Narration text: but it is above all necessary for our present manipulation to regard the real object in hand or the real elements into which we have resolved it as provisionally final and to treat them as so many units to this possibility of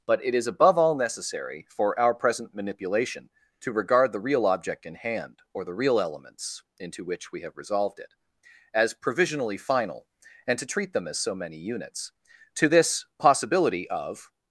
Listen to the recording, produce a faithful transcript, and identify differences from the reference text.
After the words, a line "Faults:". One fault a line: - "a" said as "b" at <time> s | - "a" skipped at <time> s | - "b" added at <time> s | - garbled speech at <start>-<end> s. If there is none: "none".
but it is above all necessary for our present manipulation to regard the real object in hand or the real elements into which we have resolved it as provisionally final and to treat them as so many units to this possibility of
Faults:
none